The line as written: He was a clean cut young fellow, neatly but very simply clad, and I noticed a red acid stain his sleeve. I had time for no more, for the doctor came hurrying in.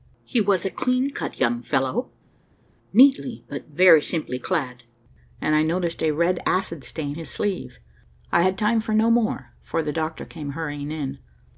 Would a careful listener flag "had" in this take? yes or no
no